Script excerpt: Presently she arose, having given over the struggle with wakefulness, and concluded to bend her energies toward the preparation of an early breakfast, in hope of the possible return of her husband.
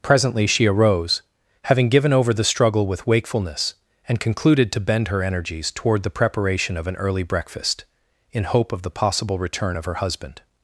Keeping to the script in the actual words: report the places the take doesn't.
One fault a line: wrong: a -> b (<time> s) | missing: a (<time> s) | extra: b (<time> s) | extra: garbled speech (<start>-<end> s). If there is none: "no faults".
no faults